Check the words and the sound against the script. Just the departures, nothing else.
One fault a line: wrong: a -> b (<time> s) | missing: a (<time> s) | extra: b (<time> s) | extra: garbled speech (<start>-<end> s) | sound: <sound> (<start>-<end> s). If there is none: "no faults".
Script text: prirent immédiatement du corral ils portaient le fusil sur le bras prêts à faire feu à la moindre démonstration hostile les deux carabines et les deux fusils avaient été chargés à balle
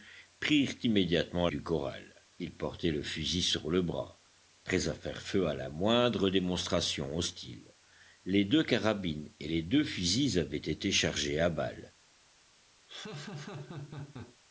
sound: laugh (12.9-14.4 s)